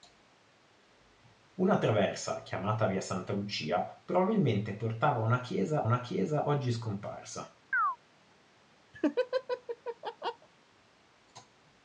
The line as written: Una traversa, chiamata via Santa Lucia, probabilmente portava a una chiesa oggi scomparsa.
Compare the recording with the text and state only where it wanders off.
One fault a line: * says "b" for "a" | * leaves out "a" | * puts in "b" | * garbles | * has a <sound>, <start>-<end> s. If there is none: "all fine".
* puts in "una chiesa"
* has a chirp, 7.7-8.0 s
* has a laugh, 8.9-10.5 s